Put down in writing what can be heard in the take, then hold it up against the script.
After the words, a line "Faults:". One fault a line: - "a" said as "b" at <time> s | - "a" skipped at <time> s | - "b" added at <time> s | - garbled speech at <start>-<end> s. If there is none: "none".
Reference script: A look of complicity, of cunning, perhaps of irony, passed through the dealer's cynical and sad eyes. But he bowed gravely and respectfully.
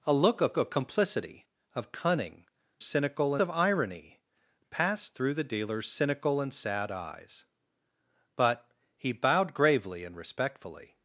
A look of of complicity, of cunning, cynical of irony, passed through the dealer's cynical and sad eyes. But he bowed gravely and respectfully.
Faults:
- "of" added at 0.6 s
- "perhaps" said as "cynical" at 2.8 s